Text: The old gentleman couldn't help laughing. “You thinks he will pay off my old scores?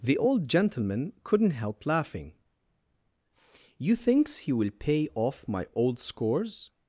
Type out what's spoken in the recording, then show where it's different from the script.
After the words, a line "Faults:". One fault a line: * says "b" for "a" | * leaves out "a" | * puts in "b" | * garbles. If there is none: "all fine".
The old gentleman couldn't help laughing. “You thinks he will pay off my old scores?
Faults:
all fine